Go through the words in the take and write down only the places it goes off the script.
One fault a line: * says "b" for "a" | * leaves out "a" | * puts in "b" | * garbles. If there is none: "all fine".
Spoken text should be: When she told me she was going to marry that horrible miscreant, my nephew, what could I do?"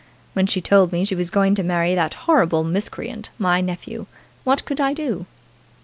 all fine